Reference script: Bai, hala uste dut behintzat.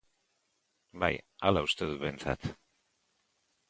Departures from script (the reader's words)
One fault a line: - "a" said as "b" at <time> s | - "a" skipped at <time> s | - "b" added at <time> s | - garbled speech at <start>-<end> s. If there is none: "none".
none